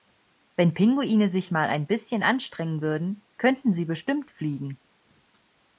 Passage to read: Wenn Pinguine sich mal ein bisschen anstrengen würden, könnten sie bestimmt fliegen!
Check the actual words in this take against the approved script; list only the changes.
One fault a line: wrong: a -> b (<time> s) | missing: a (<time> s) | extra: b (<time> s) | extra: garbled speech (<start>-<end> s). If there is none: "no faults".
no faults